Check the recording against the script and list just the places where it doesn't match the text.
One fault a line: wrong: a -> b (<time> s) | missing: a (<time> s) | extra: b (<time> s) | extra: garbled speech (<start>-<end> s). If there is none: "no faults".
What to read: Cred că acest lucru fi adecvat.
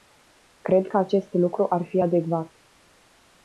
extra: ar (1.7 s)